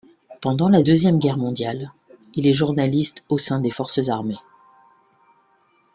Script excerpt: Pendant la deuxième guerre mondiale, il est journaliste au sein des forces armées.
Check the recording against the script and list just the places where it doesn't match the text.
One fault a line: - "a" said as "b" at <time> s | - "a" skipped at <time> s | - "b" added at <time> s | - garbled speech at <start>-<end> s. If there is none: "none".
none